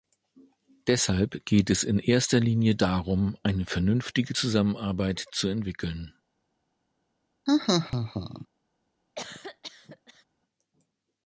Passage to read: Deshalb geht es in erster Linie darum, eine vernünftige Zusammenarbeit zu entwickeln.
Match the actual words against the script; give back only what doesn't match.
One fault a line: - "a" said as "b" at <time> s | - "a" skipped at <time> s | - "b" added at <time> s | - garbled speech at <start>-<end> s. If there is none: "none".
none